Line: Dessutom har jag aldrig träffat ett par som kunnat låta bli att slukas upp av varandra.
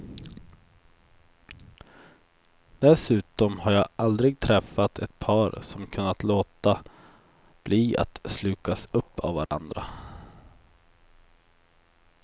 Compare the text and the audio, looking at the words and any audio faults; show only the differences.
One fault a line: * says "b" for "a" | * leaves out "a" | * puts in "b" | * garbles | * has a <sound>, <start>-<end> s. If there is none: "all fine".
* has a dropout, 9.5-9.5 s